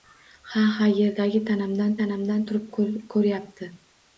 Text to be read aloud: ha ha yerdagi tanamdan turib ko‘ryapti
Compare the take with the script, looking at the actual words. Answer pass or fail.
fail